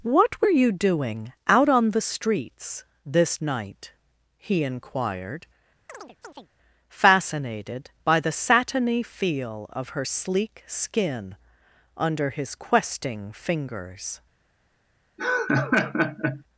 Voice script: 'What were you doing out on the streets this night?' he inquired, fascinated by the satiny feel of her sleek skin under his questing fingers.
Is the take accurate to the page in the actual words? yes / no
yes